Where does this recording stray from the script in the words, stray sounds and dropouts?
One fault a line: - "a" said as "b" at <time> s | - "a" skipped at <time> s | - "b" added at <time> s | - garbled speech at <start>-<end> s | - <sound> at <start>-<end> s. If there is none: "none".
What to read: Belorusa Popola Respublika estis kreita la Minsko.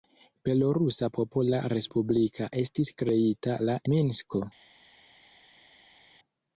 none